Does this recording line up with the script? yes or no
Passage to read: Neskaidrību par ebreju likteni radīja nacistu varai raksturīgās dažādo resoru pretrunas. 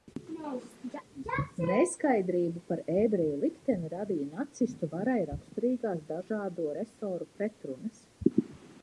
yes